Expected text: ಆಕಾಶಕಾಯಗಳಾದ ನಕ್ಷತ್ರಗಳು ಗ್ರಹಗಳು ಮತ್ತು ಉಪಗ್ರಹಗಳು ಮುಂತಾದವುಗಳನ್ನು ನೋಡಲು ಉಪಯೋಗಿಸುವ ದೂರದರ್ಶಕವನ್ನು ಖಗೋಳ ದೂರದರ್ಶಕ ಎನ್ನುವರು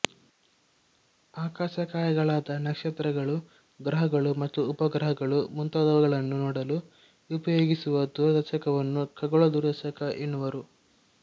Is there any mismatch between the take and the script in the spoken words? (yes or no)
no